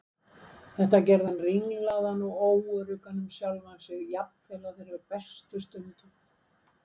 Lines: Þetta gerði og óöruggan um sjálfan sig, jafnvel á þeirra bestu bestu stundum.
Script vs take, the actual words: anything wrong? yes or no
yes